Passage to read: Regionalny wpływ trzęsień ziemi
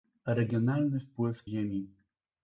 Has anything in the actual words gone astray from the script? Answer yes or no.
yes